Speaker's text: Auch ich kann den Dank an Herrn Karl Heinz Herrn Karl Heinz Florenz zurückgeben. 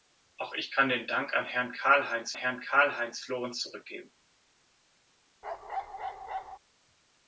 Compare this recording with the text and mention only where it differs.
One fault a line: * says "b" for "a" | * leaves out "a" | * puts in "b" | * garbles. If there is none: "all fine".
all fine